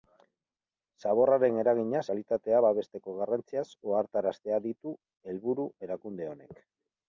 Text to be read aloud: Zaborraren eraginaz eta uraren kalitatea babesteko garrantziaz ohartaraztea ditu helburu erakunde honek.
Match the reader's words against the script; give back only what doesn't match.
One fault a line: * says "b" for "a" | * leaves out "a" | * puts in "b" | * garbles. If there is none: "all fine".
* leaves out "eta uraren"